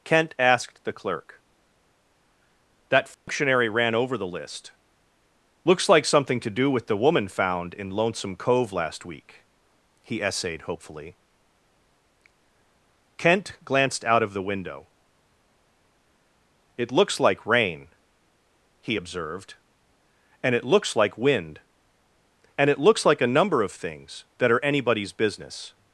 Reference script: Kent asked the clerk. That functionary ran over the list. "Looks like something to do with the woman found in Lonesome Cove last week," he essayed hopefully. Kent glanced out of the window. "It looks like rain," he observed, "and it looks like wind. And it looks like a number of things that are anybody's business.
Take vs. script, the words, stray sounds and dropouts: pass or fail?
fail